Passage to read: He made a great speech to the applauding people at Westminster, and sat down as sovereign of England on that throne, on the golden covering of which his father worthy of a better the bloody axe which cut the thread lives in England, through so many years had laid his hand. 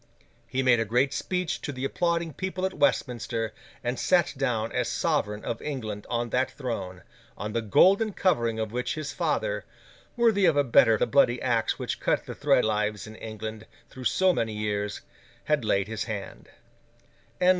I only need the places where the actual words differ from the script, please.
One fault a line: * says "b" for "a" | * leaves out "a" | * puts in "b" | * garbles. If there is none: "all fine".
all fine